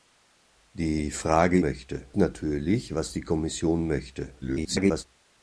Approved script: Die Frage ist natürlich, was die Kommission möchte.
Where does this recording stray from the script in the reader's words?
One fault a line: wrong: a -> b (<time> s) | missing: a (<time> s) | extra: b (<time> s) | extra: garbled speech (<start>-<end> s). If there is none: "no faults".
wrong: ist -> möchte (1.6 s)
extra: garbled speech (4.4-5.0 s)